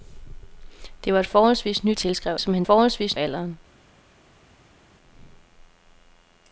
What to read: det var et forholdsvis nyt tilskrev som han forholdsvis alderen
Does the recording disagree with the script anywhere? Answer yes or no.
no